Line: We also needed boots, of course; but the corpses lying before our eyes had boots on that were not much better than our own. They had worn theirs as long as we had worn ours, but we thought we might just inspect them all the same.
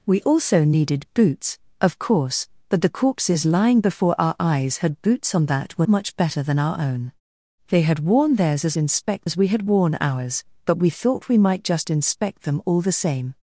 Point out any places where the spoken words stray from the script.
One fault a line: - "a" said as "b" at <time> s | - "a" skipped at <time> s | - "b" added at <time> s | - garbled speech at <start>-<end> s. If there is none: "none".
- "not" skipped at 5.9 s
- "long" said as "inspect" at 8.8 s